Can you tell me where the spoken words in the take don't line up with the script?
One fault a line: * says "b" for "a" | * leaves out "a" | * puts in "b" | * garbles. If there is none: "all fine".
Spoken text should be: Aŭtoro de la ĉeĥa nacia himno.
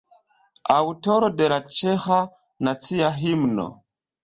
all fine